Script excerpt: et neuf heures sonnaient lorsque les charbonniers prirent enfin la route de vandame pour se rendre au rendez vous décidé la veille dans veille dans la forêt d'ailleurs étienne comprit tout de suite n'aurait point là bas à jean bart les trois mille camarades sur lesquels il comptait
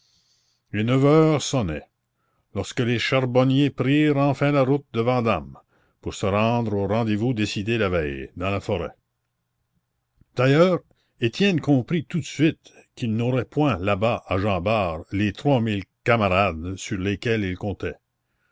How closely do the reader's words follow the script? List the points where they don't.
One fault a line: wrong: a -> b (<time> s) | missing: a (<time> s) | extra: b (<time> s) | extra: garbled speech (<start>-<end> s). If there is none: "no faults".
missing: veille dans (8.5 s)
extra: qu'il (12.9 s)